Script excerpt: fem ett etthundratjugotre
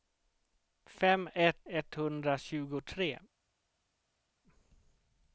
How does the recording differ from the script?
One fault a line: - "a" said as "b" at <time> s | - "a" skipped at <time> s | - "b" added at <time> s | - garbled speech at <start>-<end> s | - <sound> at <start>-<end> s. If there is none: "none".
none